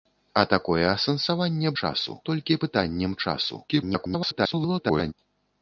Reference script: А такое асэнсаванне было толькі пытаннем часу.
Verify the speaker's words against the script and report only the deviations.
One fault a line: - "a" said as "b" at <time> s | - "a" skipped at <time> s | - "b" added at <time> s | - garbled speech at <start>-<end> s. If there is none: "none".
- "было" said as "часу" at 1.8 s
- garbled speech at 3.7-5.1 s